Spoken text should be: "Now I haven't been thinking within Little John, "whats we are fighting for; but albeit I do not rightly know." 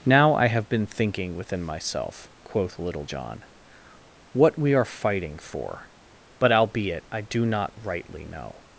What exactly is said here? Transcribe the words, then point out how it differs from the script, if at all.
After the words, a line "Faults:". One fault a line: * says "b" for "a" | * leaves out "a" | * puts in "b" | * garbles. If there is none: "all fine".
"Now I have been thinking within myself," quoth Little John, "what we are fighting for; but albeit I do not rightly know."
Faults:
* says "have" for "haven't"
* puts in "myself quoth"
* says "what" for "whats"